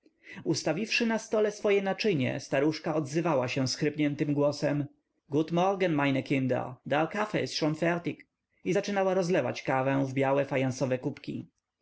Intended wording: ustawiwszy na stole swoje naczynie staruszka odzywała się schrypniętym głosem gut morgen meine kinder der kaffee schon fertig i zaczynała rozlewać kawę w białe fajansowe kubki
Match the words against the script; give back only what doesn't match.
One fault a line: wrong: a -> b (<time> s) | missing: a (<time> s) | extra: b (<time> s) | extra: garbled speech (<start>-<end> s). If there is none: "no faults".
extra: ist (7.4 s)